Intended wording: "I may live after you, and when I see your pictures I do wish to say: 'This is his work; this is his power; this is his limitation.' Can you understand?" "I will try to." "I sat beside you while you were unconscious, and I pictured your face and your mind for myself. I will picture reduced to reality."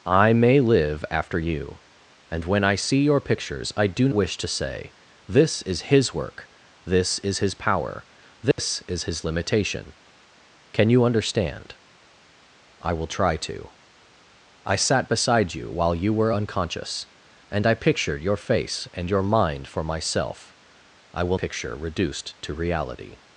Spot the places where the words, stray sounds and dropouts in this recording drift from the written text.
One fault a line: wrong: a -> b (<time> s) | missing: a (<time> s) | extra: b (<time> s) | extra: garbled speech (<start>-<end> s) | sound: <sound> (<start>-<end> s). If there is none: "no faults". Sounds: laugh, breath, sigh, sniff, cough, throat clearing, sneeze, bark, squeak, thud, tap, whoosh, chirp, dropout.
sound: dropout (8.5-8.6 s)